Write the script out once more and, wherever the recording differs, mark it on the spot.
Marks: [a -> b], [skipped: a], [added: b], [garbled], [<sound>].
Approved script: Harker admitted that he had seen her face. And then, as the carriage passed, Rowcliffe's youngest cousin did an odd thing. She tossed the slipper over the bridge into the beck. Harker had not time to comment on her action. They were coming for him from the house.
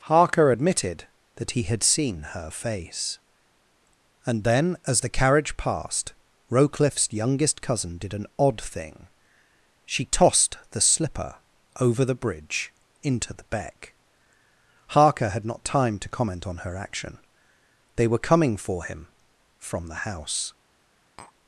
Harker admitted that he had seen her face. And then, as the carriage passed, Rowcliffe's youngest cousin did an odd thing. She tossed the slipper over the bridge into the beck. Harker had not time to comment on her action. They were coming for him from the house. [tap]